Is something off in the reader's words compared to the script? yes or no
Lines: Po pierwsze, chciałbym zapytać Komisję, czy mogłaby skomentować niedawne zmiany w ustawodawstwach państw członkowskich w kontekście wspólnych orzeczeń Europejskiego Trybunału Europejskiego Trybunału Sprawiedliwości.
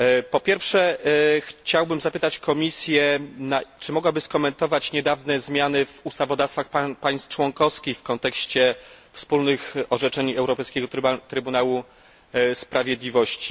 yes